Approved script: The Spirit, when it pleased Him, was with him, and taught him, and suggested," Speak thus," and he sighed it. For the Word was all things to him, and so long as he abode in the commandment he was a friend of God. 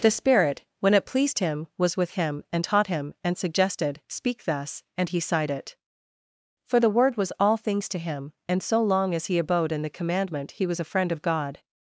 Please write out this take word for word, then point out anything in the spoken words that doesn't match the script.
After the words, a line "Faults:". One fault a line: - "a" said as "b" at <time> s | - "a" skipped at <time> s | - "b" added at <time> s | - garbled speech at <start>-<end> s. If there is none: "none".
The Spirit, when it pleased Him, was with him, and taught him, and suggested," Speak thus," and he sighed it. For the Word was all things to him, and so long as he abode in the commandment he was a friend of God.
Faults:
none